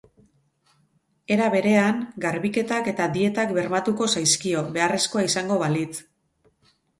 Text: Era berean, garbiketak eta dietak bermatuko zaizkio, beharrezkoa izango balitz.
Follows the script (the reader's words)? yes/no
yes